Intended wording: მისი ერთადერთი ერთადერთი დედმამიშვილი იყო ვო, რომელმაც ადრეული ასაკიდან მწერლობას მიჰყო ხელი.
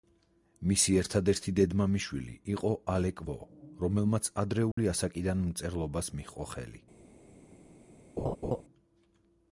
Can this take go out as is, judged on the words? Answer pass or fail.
fail